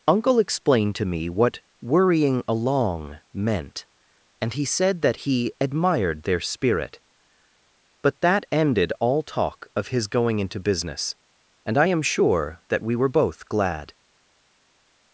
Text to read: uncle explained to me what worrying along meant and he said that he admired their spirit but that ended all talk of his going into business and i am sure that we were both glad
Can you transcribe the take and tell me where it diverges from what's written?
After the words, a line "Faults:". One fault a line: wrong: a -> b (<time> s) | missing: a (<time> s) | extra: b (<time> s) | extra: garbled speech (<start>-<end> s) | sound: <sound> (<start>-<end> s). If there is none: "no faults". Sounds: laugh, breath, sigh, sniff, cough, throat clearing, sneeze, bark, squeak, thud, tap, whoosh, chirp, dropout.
uncle explained to me what worrying along meant and he said that he admired their spirit but that ended all talk of his going into business and i am sure that we were both glad
Faults:
no faults